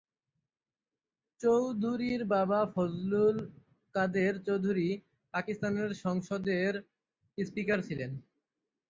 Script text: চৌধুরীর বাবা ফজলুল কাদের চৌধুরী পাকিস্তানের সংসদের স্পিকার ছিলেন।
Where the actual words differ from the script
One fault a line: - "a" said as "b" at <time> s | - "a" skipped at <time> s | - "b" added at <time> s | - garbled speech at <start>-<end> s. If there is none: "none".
none